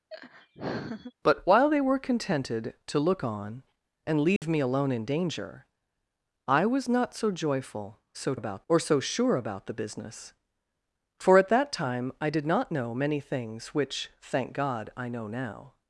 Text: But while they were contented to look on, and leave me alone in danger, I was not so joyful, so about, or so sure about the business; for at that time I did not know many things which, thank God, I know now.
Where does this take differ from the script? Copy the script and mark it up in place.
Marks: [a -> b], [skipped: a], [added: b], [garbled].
But while they were contented to look on, and leave me alone in danger, I was not so joyful, so about, or so sure about the business; for at that time I did not know many things which, thank God, I know now.